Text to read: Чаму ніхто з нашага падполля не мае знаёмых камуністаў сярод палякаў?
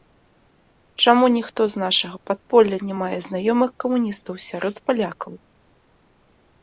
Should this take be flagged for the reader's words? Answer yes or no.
no